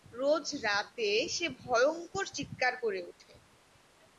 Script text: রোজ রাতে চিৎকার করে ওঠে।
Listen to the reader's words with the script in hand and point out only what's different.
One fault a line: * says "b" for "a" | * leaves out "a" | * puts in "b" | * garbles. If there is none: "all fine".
* puts in "সে ভয়ংকর"